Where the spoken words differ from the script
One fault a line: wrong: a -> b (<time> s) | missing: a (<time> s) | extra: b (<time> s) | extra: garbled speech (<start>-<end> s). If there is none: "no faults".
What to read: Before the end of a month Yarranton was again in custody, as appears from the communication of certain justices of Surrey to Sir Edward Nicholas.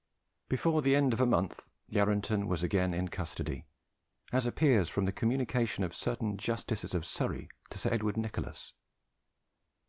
no faults